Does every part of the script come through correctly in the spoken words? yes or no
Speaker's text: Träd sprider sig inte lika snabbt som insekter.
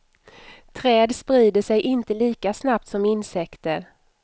yes